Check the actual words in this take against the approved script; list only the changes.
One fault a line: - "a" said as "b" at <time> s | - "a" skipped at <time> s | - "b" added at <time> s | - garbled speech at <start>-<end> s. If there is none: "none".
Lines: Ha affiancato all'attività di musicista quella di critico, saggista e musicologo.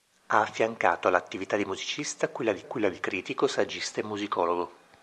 - "quella di" added at 2.6 s